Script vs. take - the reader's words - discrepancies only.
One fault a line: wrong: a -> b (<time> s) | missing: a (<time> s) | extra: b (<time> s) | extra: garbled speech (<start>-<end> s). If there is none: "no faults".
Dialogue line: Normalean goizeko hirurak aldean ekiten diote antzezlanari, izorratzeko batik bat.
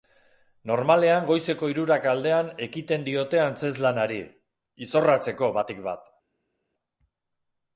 no faults